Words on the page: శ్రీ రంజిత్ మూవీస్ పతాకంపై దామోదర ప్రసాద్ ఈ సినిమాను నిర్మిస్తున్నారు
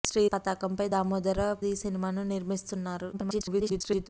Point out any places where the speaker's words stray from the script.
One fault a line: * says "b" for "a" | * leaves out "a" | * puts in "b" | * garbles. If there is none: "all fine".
* leaves out "రంజిత్ మూవీస్"
* leaves out "ప్రసాద్"
* garbles